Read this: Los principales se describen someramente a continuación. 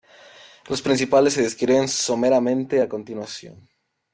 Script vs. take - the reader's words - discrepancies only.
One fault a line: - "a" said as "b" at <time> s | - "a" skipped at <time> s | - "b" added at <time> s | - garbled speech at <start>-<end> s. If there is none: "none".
none